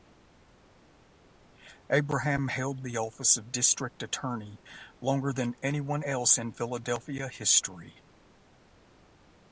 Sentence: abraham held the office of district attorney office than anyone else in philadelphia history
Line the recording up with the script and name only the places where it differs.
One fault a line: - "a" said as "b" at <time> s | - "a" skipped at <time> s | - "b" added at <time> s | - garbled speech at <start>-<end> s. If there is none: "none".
- "office" said as "longer" at 5.0 s